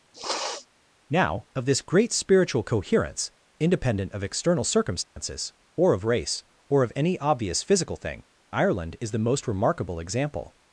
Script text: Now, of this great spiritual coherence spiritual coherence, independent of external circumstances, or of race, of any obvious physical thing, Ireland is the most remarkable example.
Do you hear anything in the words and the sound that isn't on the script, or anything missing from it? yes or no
yes